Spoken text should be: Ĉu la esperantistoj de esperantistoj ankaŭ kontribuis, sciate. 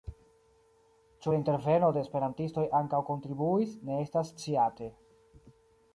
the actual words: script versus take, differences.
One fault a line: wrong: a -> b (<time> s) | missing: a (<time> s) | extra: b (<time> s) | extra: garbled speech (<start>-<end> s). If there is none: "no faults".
wrong: esperantistoj -> interveno (1.4 s)
extra: ne estas (3.9 s)